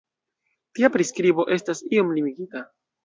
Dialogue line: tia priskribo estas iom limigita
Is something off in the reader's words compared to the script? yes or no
no